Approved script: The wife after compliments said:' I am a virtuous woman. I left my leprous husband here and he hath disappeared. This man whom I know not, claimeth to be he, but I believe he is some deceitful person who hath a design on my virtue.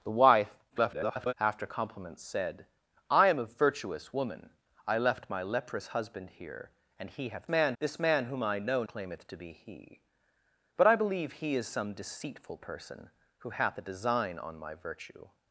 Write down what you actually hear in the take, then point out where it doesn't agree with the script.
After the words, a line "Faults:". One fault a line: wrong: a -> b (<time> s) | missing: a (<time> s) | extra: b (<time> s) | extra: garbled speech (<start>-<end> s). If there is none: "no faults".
The wife [garbled] after compliments said:' I am a virtuous woman. I left my leprous husband here and he hath man. This man whom I know claimeth to be he, but I believe he is some deceitful person who hath a design on my virtue.
Faults:
extra: garbled speech (0.7-1.3 s)
wrong: disappeared -> man (7.5 s)
missing: not (8.8 s)